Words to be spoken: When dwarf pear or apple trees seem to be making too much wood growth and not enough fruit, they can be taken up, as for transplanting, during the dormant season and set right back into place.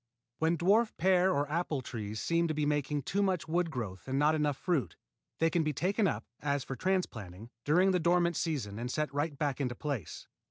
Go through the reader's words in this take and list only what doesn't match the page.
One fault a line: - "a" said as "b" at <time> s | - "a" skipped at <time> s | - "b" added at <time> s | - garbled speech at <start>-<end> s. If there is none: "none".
none